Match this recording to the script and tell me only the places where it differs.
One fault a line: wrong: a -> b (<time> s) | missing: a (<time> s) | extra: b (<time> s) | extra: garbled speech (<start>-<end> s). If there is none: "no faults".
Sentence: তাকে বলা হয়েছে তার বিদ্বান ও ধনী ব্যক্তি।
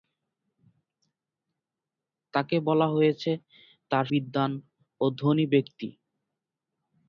no faults